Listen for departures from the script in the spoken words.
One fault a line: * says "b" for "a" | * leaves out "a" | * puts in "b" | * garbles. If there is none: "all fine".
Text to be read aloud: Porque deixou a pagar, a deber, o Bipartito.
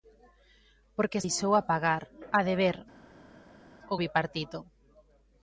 all fine